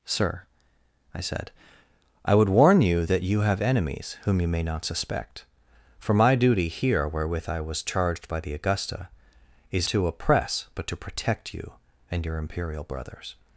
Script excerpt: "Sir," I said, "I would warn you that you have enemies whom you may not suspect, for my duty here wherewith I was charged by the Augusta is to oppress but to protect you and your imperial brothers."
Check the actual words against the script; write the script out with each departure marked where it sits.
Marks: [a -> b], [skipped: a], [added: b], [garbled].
"Sir," I said, "I would warn you that you have enemies whom you may not suspect, for my duty here wherewith I was charged by the Augusta is to oppress but to protect you and your imperial brothers."